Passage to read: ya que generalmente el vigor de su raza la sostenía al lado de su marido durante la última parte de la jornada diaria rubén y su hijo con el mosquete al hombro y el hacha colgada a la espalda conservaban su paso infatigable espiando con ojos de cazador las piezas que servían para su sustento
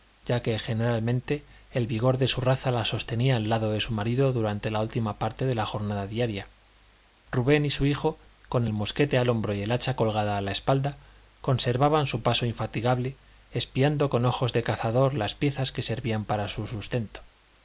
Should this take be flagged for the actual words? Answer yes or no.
no